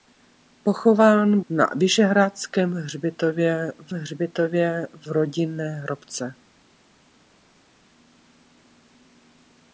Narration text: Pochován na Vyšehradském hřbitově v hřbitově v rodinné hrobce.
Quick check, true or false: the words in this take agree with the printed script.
true